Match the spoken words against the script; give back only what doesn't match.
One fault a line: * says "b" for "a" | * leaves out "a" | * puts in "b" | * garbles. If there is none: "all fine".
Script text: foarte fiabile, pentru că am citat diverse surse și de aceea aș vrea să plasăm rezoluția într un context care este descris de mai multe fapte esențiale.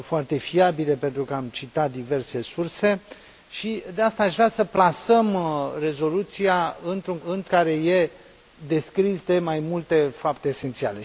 * says "într" for "context"